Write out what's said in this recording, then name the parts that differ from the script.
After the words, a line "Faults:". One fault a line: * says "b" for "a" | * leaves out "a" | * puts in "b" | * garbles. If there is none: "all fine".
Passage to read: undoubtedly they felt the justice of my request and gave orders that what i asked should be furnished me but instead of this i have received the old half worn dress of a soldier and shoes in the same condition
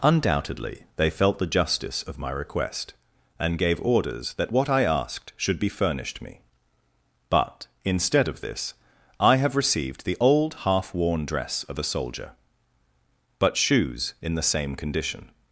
undoubtedly they felt the justice of my request and gave orders that what i asked should be furnished me but instead of this i have received the old half worn dress of a soldier but shoes in the same condition
Faults:
* says "but" for "and"